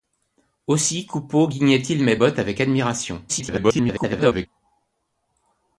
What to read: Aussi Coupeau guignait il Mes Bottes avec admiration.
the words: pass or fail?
fail